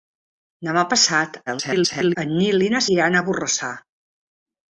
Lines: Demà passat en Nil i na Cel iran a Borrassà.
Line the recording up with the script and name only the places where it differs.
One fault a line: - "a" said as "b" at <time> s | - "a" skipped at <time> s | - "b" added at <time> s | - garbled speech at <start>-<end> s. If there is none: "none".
- garbled speech at 1.5-2.2 s
- "Cel" skipped at 2.8 s